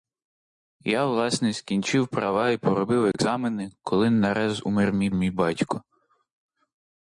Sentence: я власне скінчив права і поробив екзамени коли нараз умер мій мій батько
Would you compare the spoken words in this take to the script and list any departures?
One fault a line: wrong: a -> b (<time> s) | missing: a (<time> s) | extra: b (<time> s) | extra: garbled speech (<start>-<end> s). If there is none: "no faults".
no faults